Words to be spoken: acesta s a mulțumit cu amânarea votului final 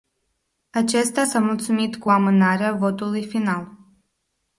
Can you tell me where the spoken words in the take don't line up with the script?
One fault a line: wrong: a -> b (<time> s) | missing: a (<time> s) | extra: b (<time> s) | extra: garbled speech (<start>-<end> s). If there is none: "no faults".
no faults